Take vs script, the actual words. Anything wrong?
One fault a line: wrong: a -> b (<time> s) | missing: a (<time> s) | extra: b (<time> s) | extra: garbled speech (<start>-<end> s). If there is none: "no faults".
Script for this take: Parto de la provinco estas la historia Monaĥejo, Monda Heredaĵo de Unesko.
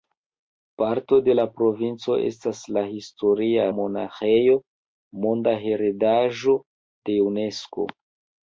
no faults